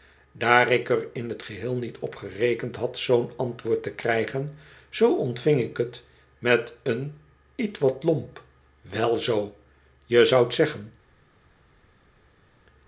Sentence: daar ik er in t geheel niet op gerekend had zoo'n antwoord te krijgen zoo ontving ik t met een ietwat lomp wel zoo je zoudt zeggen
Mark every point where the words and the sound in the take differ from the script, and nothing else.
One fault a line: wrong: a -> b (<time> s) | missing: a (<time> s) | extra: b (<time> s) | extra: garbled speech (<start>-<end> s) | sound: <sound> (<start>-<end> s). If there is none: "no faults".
no faults